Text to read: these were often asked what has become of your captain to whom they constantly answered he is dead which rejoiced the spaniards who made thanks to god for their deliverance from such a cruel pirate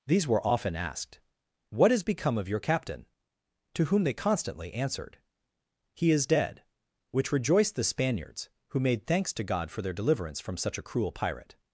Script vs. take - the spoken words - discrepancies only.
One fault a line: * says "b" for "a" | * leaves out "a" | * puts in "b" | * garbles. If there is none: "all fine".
all fine